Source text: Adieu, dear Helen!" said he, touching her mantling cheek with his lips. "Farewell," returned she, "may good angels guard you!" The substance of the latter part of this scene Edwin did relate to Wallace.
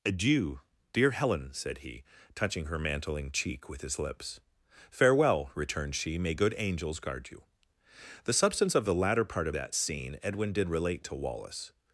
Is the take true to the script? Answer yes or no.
no